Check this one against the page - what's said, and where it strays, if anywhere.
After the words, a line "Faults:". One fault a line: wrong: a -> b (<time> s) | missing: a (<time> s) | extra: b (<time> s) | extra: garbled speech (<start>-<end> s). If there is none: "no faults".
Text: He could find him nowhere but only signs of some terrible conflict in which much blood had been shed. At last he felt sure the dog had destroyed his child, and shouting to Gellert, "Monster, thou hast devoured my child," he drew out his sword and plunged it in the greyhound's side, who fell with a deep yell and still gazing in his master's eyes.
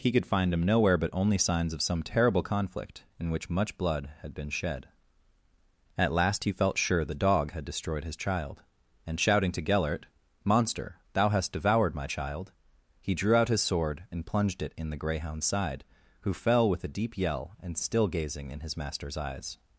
He could find him nowhere but only signs of some terrible conflict in which much blood had been shed. At last he felt sure the dog had destroyed his child, and shouting to Gellert, "Monster, thou hast devoured my child," he drew out his sword and plunged it in the greyhound's side, who fell with a deep yell and still gazing in his master's eyes.
Faults:
no faults